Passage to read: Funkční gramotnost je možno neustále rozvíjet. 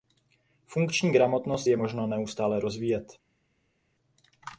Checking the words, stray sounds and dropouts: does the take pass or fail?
pass